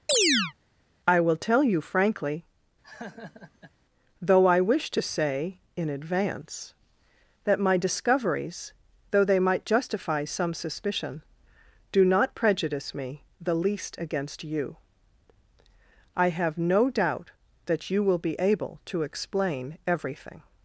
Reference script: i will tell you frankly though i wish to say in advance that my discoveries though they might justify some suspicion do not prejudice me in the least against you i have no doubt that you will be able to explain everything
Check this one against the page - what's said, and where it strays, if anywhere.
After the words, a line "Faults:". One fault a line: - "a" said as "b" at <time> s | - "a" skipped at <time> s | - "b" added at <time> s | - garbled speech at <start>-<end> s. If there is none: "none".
i will tell you frankly though i wish to say in advance that my discoveries though they might justify some suspicion do not prejudice me the least against you i have no doubt that you will be able to explain everything
Faults:
- "in" skipped at 13.2 s